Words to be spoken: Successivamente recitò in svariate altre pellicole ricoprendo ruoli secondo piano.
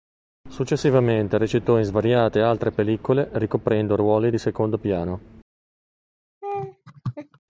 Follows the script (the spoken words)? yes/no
no